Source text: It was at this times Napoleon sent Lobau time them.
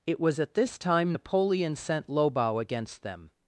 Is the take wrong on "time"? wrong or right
wrong